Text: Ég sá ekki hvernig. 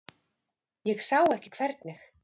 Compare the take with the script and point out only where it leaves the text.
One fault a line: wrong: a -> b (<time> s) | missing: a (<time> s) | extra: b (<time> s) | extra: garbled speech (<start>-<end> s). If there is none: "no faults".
no faults